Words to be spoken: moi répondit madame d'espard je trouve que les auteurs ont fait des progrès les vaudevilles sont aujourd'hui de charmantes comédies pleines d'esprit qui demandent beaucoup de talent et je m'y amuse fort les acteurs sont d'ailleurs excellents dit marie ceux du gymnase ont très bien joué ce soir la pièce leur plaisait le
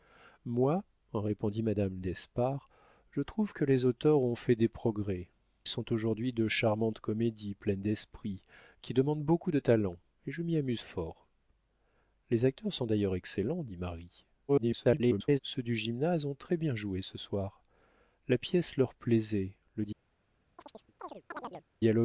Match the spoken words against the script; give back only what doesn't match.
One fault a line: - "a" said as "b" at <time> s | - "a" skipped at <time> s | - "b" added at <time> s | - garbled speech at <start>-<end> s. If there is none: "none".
- "les vaudevilles" skipped at 5.3 s
- garbled speech at 14.5-15.4 s